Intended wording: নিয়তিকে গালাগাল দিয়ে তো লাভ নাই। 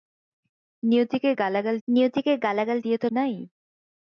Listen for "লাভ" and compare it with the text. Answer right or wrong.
wrong